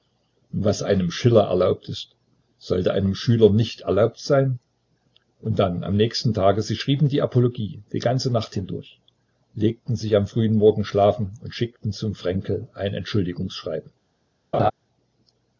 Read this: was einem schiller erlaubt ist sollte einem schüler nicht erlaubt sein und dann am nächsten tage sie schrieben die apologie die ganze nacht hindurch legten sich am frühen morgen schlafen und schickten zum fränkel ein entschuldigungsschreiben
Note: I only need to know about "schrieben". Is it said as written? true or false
true